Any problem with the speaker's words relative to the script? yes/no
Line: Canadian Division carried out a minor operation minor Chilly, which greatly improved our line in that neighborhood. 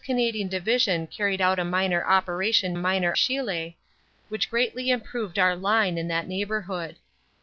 no